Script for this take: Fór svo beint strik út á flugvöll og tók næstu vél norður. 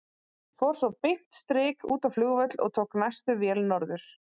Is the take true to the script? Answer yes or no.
yes